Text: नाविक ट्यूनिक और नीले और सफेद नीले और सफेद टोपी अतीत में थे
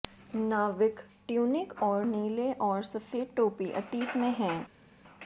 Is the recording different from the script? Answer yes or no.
yes